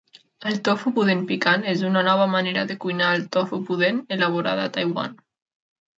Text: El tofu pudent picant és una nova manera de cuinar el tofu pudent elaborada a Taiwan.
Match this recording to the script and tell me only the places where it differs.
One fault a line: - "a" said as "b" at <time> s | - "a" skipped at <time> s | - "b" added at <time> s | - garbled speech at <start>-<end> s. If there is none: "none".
none